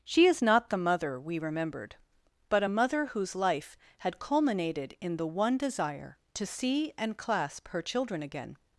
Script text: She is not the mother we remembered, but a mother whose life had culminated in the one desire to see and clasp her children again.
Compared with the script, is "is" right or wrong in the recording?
right